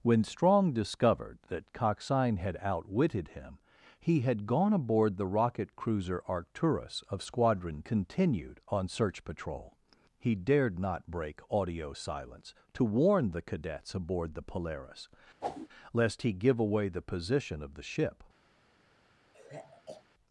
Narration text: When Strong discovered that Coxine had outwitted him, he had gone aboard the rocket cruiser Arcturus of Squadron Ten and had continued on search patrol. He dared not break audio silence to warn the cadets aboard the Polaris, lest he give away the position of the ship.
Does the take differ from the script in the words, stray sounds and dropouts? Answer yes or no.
yes